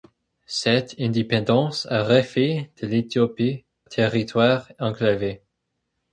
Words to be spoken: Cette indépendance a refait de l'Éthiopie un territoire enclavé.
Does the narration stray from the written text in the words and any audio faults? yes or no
yes